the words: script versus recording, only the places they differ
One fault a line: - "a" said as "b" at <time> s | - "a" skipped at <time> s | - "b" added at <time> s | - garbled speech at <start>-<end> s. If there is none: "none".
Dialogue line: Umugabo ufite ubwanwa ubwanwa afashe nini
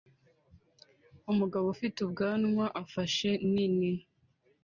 - "ubwanwa" skipped at 2.7 s